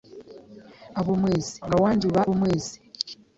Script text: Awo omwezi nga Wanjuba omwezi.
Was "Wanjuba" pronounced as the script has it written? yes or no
yes